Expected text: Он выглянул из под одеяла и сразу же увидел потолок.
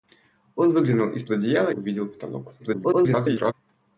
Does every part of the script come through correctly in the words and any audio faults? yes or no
no